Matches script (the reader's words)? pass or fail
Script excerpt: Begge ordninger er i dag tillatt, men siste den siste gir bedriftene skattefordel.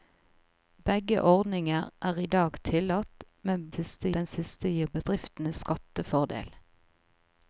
pass